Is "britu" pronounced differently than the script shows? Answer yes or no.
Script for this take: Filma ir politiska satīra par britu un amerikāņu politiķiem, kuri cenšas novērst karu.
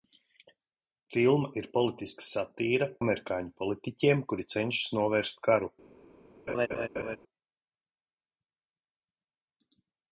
yes